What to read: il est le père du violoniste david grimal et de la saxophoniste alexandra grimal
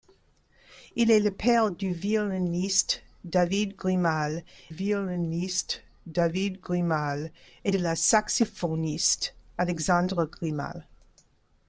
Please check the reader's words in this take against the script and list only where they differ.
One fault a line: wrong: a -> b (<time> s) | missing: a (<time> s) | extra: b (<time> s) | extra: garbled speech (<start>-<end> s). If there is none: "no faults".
extra: violoniste david grimal (4.7 s)